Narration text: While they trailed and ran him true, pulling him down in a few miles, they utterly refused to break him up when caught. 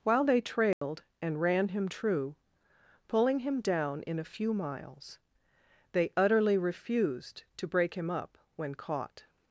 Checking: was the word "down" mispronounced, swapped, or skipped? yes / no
no